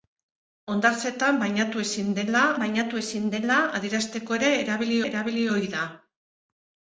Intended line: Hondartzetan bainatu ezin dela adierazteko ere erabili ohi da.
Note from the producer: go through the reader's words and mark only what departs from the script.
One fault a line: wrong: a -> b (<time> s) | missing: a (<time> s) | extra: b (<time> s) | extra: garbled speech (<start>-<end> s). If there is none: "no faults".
extra: bainatu ezin dela (2.6 s)
extra: erabili (5.1 s)